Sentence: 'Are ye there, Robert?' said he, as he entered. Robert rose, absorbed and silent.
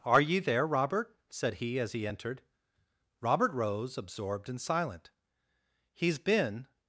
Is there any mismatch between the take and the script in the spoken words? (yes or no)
yes